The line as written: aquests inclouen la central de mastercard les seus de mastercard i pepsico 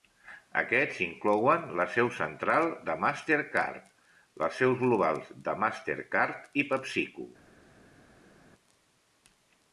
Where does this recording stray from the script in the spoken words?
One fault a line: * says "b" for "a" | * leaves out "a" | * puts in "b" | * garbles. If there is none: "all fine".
* puts in "seu"
* puts in "globals"